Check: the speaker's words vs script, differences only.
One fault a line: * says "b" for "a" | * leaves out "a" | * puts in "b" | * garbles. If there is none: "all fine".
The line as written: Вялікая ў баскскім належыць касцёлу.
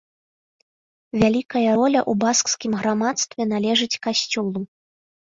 * puts in "роля"
* puts in "грамадстве"